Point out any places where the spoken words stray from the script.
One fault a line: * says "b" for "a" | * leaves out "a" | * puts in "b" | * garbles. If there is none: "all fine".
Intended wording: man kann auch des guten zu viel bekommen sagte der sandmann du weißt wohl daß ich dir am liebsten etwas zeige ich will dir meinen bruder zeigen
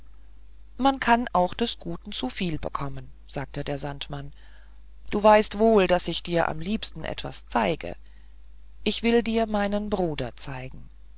all fine